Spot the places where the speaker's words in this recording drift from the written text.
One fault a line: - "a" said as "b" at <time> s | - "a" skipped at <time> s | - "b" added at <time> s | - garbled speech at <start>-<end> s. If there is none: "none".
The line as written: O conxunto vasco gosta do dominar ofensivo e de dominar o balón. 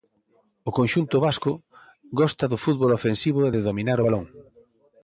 - "dominar" said as "fútbol" at 2.6 s